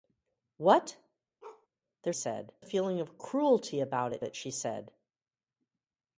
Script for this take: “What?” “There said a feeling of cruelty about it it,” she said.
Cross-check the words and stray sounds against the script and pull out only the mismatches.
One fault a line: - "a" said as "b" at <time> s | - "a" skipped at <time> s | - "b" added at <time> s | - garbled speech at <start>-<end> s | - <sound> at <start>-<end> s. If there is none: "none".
- bark at 1.4-1.7 s